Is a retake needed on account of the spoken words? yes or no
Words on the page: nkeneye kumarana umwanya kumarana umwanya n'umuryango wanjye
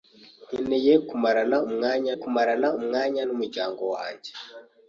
no